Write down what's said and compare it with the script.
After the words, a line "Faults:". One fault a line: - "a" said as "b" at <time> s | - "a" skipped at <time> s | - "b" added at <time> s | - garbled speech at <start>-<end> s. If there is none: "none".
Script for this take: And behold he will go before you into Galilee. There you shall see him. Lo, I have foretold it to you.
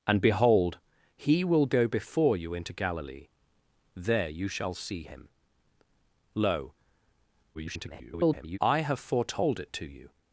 And behold he will go before you into Galilee. There you shall see him. Lo, [garbled] I have foretold it to you.
Faults:
- garbled speech at 7.5-8.6 s